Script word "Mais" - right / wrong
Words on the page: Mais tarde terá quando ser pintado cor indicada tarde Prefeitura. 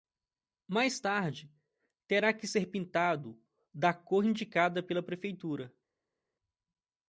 right